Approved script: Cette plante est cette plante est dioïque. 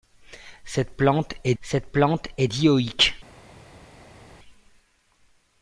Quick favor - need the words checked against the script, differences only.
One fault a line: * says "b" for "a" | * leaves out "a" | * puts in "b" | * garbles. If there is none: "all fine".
all fine